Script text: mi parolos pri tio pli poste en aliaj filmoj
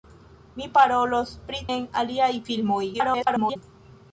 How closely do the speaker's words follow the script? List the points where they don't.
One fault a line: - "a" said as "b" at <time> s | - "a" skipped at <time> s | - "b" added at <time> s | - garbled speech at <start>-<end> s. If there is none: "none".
- "tio pli poste" skipped at 1.6 s
- garbled speech at 2.9-3.6 s